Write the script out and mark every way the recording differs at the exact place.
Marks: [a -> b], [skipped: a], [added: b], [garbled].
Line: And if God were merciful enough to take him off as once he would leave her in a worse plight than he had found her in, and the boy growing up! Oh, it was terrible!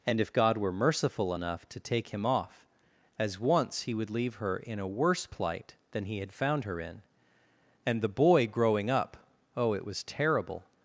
And if God were merciful enough to take him off as once he would leave her in a worse plight than he had found her in, and the boy growing up! Oh, it was terrible!